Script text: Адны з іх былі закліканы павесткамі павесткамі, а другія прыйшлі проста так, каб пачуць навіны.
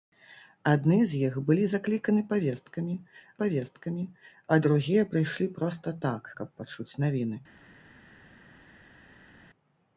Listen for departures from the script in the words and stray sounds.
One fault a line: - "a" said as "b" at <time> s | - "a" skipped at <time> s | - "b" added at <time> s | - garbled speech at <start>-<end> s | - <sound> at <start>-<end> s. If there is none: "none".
none